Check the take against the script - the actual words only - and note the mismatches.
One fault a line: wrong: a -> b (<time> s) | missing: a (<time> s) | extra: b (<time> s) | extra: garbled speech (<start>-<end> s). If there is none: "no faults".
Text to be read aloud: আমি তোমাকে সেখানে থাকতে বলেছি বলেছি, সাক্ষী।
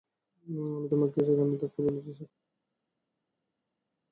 missing: বলেছি (2.1 s)